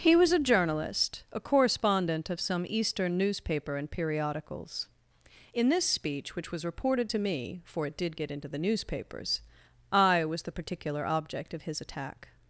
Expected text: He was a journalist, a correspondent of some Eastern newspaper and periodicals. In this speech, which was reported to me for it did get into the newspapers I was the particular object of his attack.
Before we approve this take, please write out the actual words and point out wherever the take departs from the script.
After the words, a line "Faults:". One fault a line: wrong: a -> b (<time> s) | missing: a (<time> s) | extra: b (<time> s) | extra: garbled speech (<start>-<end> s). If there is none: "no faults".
He was a journalist, a correspondent of some Eastern newspaper and periodicals. In this speech, which was reported to me for it did get into the newspapers I was the particular object of his attack.
Faults:
no faults